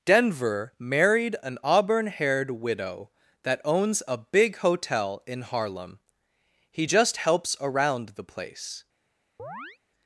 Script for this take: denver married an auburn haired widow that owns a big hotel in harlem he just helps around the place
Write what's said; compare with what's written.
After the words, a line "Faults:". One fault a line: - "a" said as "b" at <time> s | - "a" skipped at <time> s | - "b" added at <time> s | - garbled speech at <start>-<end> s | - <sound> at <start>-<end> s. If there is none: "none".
denver married an auburn haired widow that owns a big hotel in harlem he just helps around the place
Faults:
- chirp at 9.4-9.8 s